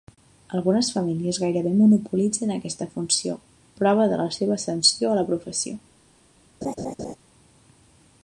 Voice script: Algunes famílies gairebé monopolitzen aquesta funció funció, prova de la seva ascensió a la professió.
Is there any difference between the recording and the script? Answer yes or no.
yes